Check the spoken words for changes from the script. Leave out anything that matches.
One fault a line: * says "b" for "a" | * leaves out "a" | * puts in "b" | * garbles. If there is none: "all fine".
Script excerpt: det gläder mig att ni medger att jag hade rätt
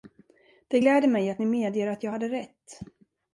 all fine